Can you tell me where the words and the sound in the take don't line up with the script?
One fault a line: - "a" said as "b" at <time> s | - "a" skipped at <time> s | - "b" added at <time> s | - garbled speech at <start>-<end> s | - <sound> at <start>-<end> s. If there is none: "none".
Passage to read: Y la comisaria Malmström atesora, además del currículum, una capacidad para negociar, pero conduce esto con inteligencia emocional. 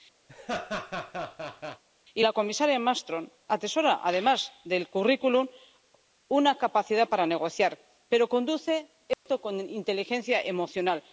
- laugh at 0.3-1.8 s
- dropout at 9.1-9.3 s